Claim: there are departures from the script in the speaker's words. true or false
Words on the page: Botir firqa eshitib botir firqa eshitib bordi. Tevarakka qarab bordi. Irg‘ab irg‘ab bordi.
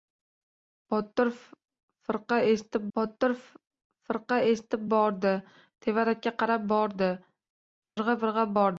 false